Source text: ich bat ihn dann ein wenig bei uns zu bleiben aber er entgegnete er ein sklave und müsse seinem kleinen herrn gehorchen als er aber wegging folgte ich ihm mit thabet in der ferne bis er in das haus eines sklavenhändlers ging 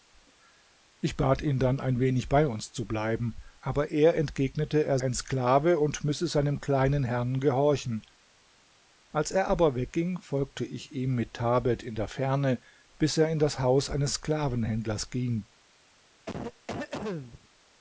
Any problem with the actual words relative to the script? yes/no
no